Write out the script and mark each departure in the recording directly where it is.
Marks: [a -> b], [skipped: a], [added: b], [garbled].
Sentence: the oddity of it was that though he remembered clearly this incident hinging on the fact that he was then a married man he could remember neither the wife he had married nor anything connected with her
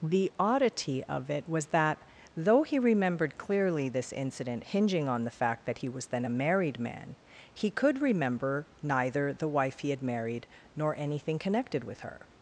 the oddity of it was that though he remembered clearly this incident hinging on the fact that he was then a married man he could remember neither the wife he had married nor anything connected with her